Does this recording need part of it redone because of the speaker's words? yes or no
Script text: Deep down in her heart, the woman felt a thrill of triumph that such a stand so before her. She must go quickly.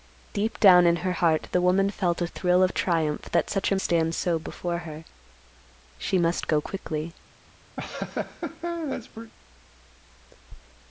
no